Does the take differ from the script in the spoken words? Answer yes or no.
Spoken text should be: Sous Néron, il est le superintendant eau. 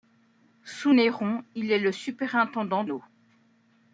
no